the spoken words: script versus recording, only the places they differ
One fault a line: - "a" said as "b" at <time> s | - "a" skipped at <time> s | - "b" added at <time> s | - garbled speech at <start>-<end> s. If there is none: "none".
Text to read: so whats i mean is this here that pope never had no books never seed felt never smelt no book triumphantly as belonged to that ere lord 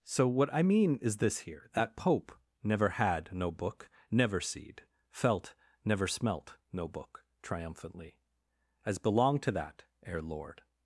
- "whats" said as "what" at 0.3 s
- "books" said as "book" at 3.5 s